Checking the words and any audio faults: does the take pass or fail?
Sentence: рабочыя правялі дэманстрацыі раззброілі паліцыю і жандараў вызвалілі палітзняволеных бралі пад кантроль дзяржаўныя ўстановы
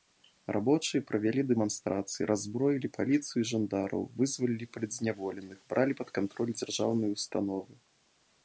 pass